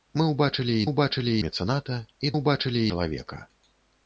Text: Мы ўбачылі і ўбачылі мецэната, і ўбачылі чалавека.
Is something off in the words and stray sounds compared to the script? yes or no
no